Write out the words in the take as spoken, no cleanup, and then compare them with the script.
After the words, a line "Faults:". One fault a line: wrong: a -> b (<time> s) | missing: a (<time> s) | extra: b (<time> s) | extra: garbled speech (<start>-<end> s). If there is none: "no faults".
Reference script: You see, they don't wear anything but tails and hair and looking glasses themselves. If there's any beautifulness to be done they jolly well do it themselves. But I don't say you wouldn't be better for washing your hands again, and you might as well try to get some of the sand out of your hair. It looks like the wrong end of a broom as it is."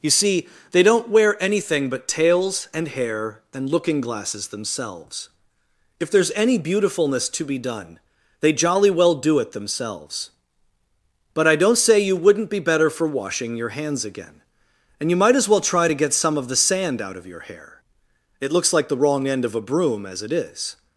You see, they don't wear anything but tails and hair and looking glasses themselves. If there's any beautifulness to be done they jolly well do it themselves. But I don't say you wouldn't be better for washing your hands again, and you might as well try to get some of the sand out of your hair. It looks like the wrong end of a broom as it is."
Faults:
no faults